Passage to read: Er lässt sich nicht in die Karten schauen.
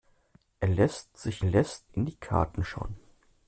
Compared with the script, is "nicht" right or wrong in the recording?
wrong